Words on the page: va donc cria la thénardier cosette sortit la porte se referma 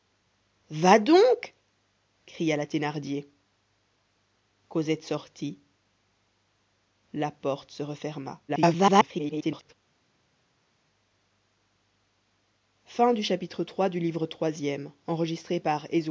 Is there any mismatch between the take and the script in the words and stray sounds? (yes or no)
yes